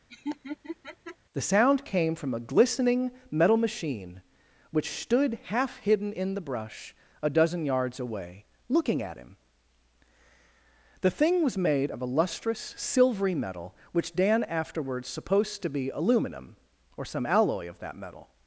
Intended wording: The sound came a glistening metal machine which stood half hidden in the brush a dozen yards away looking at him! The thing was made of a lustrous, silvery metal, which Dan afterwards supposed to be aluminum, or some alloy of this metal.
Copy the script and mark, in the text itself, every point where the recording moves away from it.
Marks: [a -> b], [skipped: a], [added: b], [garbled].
The sound came [added: from] a glistening metal machine which stood half hidden in the brush a dozen yards away looking at him! The thing was made of a lustrous, silvery metal, which Dan afterwards supposed to be aluminum, or some alloy of [this -> that] metal.